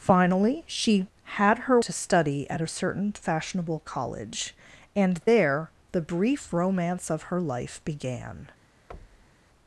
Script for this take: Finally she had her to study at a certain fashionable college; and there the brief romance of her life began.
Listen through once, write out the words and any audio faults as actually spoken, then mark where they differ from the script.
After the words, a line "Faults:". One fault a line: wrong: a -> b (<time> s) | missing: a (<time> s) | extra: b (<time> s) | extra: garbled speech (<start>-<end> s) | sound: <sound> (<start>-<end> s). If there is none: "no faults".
Finally she had her to study at a certain fashionable college; and there the brief romance of her life began.
Faults:
sound: thud (8.9-9.5 s)